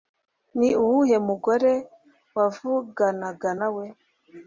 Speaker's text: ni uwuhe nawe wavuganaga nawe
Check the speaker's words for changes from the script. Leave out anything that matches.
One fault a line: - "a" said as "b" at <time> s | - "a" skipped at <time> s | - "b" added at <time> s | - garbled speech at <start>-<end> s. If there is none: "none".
- "nawe" said as "mugore" at 1.3 s